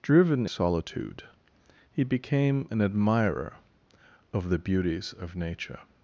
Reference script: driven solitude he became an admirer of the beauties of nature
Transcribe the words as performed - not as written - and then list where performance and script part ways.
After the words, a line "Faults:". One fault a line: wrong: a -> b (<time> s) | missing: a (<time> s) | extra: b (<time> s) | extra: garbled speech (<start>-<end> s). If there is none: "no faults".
driven solitude he became an admirer of the beauties of nature
Faults:
no faults